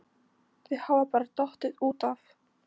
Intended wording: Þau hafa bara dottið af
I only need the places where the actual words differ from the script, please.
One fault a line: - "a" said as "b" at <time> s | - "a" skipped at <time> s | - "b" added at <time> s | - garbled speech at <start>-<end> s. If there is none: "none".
- "út" added at 1.9 s